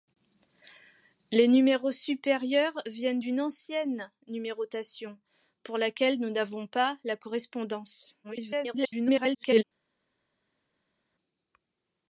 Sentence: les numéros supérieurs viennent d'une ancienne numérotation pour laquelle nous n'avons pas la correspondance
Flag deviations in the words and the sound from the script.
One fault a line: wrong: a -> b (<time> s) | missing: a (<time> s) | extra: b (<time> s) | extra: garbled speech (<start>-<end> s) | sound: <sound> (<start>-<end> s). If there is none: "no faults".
extra: garbled speech (8.2-9.6 s)